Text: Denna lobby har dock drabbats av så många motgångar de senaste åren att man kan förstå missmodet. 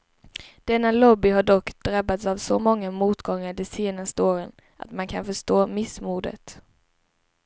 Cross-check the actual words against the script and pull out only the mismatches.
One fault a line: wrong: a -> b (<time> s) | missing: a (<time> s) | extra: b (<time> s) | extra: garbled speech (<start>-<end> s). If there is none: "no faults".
no faults